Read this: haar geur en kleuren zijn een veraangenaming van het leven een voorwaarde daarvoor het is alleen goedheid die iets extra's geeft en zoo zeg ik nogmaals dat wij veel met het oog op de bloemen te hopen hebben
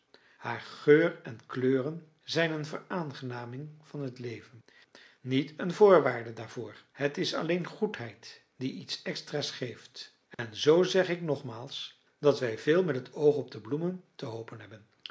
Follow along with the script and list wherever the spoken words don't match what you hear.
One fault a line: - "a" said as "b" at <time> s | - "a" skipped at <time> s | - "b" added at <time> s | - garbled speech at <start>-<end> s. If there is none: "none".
- "niet" added at 5.2 s